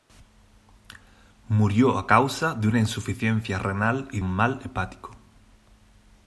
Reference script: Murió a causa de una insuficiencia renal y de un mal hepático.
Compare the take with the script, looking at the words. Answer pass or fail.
fail